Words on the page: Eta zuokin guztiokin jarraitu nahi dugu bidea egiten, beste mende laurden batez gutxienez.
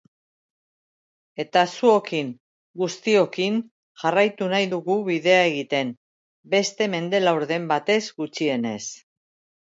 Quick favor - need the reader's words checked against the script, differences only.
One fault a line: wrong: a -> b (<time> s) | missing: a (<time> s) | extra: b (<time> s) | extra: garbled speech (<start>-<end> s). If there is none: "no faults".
no faults